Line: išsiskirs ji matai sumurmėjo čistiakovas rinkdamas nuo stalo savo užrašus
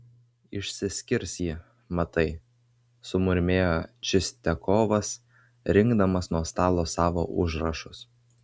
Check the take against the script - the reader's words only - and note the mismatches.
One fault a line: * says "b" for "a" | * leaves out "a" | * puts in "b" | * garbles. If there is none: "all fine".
all fine